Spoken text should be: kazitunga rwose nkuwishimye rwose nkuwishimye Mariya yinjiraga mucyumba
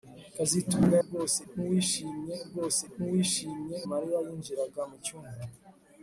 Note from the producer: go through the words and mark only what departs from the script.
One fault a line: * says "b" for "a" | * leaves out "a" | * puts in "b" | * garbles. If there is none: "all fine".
all fine